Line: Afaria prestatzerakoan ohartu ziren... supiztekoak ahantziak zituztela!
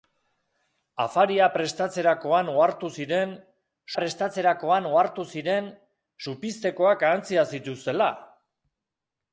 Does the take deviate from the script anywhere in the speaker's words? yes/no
yes